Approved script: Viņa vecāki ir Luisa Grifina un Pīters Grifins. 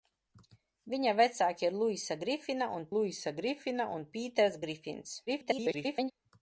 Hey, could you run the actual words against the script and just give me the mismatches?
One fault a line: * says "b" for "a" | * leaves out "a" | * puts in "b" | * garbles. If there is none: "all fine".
* puts in "Luisa Grifina un"
* garbles